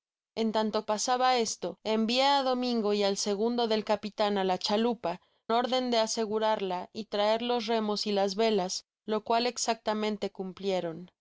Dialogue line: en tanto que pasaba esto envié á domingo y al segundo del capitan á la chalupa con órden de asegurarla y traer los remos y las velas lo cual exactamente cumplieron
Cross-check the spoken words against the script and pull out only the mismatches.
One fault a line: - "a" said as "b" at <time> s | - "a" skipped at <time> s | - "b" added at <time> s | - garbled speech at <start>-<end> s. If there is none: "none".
- "que" skipped at 0.8 s
- "con" skipped at 5.2 s